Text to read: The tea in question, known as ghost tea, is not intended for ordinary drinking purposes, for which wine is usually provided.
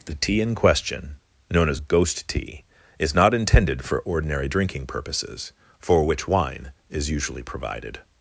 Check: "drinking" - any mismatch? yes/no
no